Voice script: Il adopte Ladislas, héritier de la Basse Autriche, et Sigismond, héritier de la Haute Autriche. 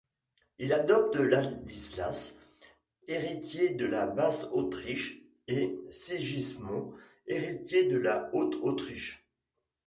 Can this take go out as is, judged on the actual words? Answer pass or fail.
pass